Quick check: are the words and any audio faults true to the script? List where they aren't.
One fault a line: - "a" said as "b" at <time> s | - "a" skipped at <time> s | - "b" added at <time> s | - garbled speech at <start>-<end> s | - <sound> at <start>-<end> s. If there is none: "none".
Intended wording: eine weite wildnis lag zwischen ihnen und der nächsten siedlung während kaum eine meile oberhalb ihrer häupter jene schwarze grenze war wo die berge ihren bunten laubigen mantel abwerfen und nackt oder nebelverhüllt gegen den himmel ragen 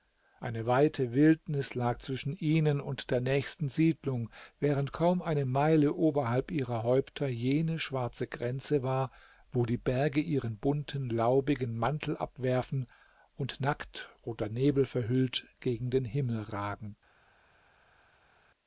none